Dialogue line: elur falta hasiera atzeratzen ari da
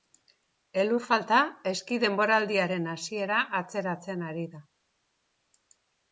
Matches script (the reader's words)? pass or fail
fail